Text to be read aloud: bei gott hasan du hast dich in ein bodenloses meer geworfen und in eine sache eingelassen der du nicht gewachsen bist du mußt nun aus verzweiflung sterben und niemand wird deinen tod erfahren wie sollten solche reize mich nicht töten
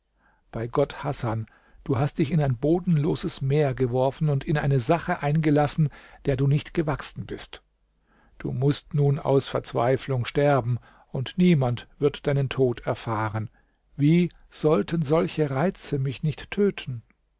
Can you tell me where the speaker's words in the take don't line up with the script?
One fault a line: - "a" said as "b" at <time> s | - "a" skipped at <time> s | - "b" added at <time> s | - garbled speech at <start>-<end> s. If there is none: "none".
none